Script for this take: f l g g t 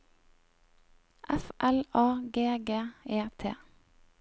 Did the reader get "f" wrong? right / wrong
right